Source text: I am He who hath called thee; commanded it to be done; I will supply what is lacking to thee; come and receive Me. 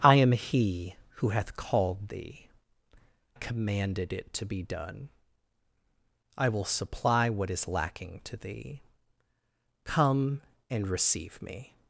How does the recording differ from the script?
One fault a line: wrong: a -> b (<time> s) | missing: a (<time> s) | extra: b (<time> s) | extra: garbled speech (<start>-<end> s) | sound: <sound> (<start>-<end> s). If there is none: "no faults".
no faults